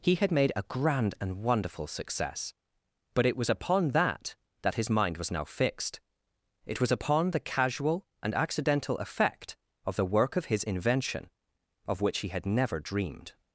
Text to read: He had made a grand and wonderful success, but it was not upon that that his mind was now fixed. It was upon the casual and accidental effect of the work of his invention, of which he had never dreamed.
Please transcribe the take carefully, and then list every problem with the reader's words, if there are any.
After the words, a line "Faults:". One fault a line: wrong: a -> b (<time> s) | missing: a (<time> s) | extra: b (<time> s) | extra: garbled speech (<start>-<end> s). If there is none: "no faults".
He had made a grand and wonderful success, but it was upon that that his mind was now fixed. It was upon the casual and accidental effect of the work of his invention, of which he had never dreamed.
Faults:
missing: not (3.5 s)